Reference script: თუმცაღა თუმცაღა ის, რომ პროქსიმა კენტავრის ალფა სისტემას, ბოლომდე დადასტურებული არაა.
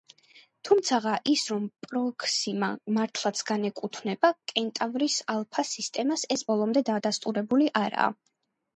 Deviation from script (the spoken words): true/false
true